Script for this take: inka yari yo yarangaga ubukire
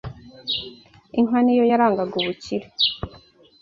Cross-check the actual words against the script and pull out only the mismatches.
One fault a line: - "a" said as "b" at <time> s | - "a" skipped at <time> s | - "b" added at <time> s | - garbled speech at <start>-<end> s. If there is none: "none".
- "yari" said as "ni" at 1.4 s